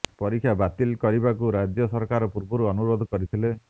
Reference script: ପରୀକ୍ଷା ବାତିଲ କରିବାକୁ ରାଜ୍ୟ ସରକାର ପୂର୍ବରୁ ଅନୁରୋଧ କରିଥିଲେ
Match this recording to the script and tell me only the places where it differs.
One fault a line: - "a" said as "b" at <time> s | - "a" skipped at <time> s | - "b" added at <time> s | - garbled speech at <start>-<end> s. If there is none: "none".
none